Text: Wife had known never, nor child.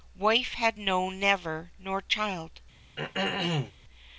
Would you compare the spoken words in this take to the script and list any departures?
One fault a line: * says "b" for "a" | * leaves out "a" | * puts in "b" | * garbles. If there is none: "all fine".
all fine